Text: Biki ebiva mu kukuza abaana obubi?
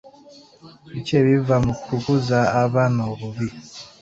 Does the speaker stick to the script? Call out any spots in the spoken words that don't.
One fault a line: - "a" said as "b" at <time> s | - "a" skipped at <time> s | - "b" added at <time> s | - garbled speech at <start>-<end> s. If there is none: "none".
none